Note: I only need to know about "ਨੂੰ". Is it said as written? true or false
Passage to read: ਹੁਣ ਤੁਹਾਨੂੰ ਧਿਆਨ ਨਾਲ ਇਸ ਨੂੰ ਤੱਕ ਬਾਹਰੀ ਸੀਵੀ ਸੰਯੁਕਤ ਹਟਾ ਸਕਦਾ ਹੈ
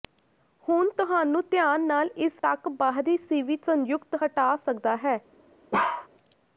false